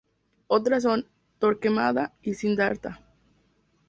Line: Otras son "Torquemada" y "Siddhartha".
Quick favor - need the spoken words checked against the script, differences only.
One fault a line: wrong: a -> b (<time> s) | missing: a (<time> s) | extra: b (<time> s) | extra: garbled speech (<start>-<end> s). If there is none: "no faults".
no faults